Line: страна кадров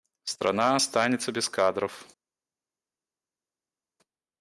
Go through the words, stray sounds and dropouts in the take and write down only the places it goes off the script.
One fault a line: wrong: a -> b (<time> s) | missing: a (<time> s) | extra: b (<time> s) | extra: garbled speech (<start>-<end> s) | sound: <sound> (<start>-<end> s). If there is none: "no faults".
extra: останется без (0.7 s)